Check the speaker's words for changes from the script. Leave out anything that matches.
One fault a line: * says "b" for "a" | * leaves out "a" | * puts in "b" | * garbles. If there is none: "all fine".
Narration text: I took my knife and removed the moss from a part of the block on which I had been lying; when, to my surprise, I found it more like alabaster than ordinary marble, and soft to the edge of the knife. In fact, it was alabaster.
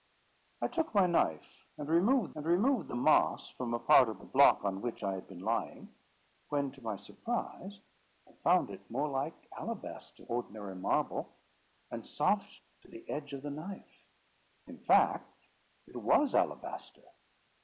* puts in "and removed"
* leaves out "than"